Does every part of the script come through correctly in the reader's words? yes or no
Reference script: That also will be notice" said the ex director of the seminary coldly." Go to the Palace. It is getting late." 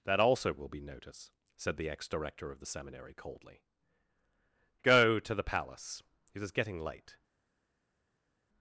yes